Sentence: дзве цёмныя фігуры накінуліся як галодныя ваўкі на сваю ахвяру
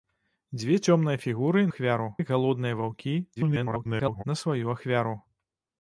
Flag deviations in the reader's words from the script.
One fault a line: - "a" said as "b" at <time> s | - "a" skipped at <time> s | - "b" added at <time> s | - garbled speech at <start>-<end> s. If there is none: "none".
- "накінуліся" said as "ахвяру" at 1.7 s
- garbled speech at 3.4-4.2 s